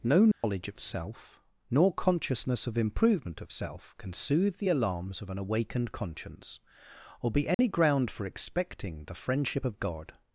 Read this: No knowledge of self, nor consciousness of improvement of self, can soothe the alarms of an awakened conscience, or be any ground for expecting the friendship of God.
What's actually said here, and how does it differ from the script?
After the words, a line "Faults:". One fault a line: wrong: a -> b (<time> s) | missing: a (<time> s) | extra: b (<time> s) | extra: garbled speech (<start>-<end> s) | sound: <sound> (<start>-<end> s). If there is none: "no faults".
No knowledge of self, nor consciousness of improvement of self, can soothe the alarms of an awakened conscience, or be any ground for expecting the friendship of God.
Faults:
sound: dropout (0.3-0.4 s)
sound: dropout (7.5-7.6 s)